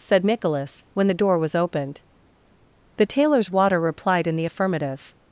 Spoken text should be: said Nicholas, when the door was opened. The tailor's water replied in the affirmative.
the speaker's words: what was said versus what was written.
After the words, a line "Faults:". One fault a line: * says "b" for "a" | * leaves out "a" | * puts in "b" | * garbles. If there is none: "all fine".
said Nicholas, when the door was opened. The tailor's water replied in the affirmative.
Faults:
all fine